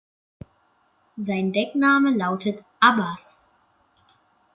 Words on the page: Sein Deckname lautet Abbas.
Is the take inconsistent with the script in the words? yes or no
no